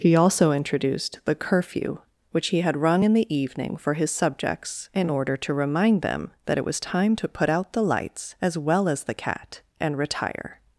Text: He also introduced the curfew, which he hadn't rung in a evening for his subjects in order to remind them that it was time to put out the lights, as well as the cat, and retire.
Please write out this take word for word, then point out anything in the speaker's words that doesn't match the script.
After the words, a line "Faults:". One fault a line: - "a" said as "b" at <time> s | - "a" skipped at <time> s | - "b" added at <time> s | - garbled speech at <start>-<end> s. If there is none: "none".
He also introduced the curfew, which he had rung in the evening for his subjects in order to remind them that it was time to put out the lights, as well as the cat, and retire.
Faults:
- "hadn't" said as "had" at 2.6 s
- "a" said as "the" at 3.1 s